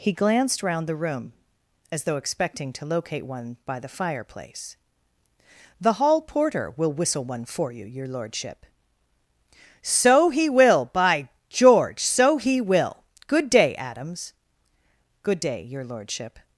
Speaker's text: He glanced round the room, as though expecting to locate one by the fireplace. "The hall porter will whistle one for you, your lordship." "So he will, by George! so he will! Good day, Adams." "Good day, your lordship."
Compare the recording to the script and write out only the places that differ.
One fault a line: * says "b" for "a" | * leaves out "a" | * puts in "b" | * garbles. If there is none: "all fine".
all fine